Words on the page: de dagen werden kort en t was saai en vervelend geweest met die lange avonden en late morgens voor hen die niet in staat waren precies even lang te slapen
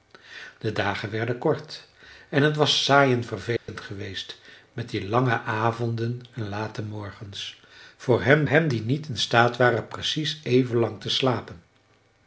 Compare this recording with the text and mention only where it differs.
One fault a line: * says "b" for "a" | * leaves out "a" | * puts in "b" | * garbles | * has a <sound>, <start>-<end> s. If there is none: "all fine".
* has a dropout, 3.6-3.7 s
* puts in "hen"